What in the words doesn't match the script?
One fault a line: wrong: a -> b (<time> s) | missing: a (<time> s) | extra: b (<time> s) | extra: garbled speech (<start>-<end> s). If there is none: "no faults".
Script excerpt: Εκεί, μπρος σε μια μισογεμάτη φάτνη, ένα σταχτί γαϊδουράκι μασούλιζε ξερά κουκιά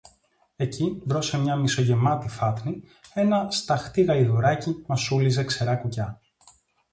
no faults